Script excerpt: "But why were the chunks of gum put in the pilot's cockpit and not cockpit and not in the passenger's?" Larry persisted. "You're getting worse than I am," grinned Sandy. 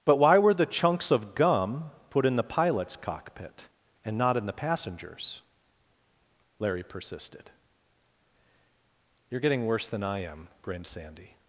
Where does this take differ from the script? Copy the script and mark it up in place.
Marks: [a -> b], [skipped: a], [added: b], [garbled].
"But why were the chunks of gum put in the pilot's cockpit and not [skipped: cockpit and not] in the passenger's?" Larry persisted. "You're getting worse than I am," grinned Sandy.